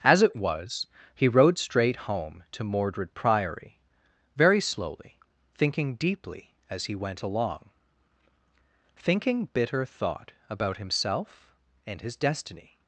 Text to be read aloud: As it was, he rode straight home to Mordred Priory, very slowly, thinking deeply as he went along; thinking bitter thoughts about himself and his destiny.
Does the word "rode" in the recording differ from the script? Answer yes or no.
no